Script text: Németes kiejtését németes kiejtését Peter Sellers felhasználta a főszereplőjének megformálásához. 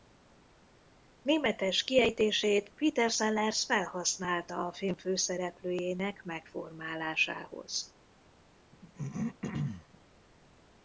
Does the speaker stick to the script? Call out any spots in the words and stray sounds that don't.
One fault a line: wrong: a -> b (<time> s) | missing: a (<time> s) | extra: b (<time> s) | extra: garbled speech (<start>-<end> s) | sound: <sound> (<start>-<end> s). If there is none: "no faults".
missing: németes kiejtését (2.7 s)
extra: film (4.7 s)
sound: throat clearing (8.7-10.0 s)